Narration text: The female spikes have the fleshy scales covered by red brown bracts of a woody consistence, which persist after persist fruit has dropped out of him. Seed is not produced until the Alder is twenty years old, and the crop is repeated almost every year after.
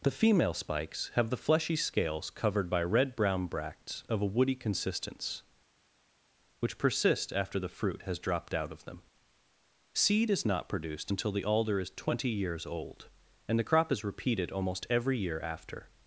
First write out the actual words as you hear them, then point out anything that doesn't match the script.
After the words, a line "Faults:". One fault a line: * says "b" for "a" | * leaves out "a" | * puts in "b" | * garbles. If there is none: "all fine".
The female spikes have the fleshy scales covered by red brown bracts of a woody consistence, which persist after the fruit has dropped out of them. Seed is not produced until the Alder is twenty years old, and the crop is repeated almost every year after.
Faults:
* says "the" for "persist"
* says "them" for "him"